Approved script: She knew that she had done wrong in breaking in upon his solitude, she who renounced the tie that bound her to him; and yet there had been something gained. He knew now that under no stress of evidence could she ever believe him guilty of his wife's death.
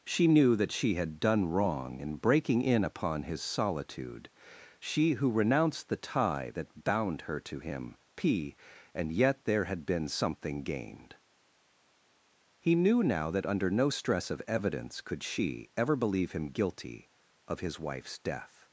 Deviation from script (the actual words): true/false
true